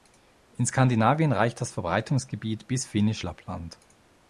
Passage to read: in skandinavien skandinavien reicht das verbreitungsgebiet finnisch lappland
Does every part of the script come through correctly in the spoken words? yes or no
no